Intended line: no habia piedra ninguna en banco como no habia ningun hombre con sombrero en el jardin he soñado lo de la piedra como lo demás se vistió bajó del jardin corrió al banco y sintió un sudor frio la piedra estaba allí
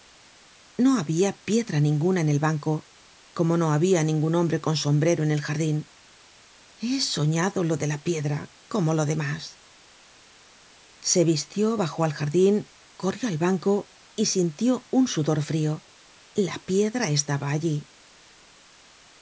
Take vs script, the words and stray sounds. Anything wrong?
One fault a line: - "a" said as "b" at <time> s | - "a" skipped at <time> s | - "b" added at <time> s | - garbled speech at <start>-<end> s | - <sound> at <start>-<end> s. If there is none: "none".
- "el" added at 2.3 s
- "del" said as "al" at 12.0 s